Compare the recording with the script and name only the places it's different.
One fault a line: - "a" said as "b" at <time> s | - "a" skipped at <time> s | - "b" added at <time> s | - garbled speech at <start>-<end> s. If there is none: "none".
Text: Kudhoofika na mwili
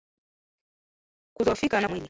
none